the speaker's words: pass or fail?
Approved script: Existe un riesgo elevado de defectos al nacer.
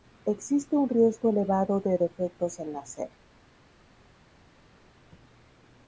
pass